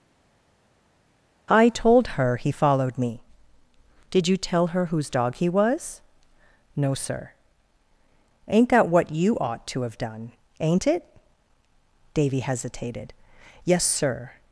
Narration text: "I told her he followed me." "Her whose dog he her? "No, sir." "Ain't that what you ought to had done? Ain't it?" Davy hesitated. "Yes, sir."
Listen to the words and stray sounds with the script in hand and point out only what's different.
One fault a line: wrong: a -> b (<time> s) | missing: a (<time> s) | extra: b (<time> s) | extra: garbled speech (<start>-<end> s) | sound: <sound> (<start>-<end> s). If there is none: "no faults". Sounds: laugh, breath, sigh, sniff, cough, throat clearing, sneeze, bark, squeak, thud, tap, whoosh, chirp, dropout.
extra: Did you tell (4.1 s)
wrong: her -> was (5.5 s)
wrong: had -> have (9.8 s)